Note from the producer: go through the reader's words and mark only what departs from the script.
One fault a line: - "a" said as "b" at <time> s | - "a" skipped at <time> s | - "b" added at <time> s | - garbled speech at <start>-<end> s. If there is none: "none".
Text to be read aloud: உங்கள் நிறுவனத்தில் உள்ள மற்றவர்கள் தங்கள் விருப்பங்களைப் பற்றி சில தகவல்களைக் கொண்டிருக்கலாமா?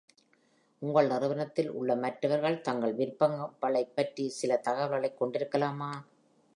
none